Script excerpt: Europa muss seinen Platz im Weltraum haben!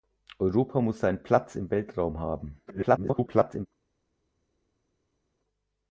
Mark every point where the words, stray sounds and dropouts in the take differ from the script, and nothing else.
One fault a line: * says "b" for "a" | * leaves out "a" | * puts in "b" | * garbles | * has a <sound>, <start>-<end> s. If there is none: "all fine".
* garbles